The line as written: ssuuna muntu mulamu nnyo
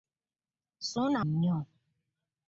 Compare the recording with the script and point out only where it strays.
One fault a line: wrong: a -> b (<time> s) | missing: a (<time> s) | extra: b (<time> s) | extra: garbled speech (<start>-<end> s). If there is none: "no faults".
missing: muntu mulamu (1.2 s)